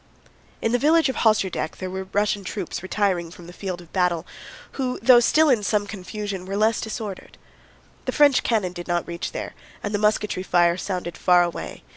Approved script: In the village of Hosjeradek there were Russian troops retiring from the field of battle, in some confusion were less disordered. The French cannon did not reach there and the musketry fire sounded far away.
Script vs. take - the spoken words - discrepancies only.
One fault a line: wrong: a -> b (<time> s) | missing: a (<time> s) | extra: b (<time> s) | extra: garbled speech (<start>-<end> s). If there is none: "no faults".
extra: who though still (4.7 s)